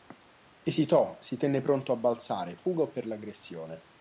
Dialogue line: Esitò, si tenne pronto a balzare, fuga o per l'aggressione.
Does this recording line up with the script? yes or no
yes